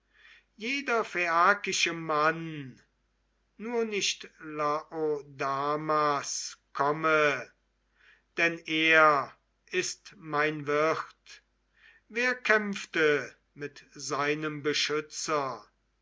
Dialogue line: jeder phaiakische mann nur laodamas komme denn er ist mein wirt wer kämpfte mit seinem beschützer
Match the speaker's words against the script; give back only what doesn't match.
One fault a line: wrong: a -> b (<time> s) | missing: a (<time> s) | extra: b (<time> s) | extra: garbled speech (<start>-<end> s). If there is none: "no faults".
extra: nicht (3.9 s)